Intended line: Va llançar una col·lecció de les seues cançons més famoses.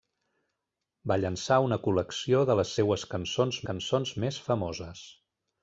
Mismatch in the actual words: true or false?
true